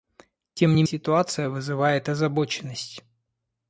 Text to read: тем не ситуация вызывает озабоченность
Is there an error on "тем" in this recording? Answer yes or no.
no